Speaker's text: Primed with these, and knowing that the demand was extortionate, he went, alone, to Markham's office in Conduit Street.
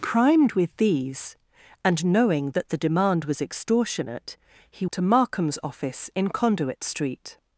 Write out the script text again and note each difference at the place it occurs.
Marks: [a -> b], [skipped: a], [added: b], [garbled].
Primed with these, and knowing that the demand was extortionate, he [skipped: went, alone,] to Markham's office in Conduit Street.